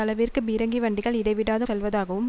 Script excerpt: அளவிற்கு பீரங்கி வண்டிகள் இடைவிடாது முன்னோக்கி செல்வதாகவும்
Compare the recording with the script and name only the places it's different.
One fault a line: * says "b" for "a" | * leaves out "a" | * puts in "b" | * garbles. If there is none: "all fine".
* leaves out "முன்னோக்கி"